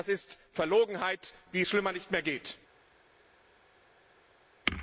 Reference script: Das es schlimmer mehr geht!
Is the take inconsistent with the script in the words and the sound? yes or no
yes